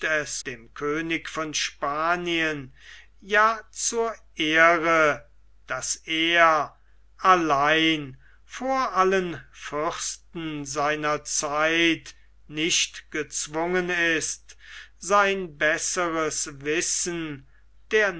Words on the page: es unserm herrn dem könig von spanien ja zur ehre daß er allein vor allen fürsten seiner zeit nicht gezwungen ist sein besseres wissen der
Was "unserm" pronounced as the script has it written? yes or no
no